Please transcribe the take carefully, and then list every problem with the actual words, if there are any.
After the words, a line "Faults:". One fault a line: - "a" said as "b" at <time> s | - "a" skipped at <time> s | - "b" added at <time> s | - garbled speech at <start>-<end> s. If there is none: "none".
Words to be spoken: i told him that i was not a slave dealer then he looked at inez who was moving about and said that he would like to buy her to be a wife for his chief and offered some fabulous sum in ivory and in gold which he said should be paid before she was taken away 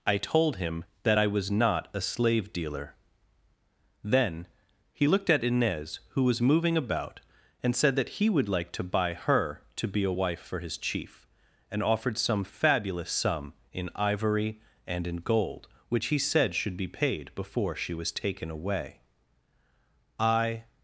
i told him that i was not a slave dealer then he looked at inez who was moving about and said that he would like to buy her to be a wife for his chief and offered some fabulous sum in ivory and in gold which he said should be paid before she was taken away i
Faults:
- "i" added at 20.2 s